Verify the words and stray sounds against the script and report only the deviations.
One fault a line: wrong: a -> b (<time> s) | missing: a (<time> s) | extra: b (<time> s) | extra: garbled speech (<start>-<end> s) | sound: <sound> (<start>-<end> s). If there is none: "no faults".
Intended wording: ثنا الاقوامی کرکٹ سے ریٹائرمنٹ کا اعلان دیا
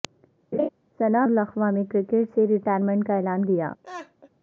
sound: laugh (0.5-0.7 s)
sound: laugh (3.8-4.3 s)